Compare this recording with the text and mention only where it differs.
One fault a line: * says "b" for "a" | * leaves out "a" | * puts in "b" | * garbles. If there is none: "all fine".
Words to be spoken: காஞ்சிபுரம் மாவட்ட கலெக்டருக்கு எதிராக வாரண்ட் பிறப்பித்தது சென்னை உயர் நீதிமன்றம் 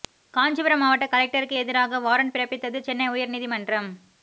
all fine